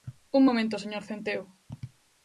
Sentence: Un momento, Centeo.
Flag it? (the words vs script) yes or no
yes